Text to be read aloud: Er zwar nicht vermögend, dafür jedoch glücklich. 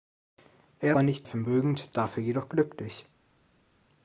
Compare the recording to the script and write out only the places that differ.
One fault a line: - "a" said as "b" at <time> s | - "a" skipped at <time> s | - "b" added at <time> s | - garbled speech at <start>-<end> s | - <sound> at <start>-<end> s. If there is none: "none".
none